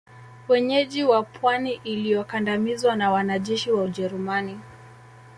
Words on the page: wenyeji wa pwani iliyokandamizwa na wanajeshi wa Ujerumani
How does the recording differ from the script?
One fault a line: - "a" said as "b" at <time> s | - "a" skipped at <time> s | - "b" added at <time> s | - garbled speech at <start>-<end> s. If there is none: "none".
none